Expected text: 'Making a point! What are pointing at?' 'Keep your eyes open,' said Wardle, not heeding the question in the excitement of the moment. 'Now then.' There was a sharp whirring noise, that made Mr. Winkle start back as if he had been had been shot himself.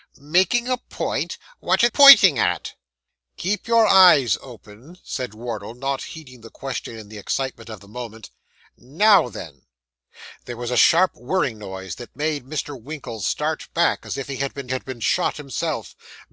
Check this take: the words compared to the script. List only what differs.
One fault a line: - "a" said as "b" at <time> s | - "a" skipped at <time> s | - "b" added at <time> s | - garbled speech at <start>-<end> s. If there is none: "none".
none